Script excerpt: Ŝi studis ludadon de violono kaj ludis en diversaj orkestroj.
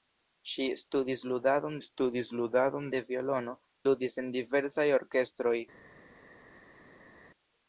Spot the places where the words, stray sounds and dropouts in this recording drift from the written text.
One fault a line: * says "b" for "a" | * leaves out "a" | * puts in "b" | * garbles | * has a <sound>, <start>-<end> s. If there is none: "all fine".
* puts in "studis ludadon"
* leaves out "kaj"